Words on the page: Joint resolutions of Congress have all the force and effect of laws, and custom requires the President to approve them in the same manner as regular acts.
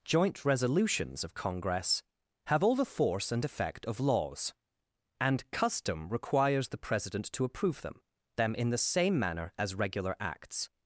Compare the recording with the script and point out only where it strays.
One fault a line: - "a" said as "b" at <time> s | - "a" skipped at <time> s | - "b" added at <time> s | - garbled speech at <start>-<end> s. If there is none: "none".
- "them" added at 8.4 s